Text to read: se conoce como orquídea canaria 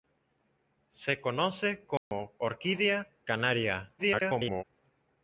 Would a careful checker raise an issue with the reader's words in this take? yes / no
yes